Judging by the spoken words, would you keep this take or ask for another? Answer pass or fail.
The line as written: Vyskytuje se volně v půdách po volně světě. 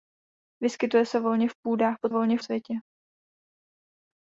pass